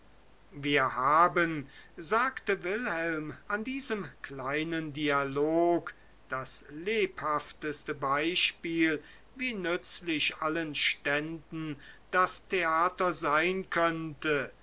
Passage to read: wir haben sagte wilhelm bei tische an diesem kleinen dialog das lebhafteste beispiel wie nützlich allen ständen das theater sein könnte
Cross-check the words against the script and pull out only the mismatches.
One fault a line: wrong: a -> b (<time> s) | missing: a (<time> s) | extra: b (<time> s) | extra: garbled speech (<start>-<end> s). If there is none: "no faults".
missing: bei tische (3.4 s)